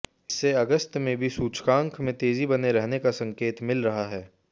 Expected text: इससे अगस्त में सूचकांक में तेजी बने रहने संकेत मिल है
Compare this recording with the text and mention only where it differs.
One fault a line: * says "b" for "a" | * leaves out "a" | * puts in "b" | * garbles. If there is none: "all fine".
* puts in "भी"
* puts in "का"
* puts in "रहा"